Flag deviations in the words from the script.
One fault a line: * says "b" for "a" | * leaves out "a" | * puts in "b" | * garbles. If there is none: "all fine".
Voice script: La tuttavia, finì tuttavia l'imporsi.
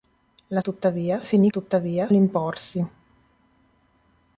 all fine